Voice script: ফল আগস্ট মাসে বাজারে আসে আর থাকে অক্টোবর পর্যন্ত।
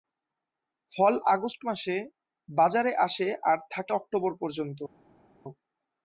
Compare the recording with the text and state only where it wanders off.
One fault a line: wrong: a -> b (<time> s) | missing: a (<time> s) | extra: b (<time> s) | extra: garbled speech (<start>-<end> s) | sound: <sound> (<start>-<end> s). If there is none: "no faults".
no faults